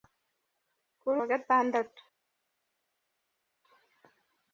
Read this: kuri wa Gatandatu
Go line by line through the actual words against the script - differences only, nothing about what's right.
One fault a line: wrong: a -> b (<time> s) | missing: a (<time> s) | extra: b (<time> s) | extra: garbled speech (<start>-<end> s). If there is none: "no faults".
no faults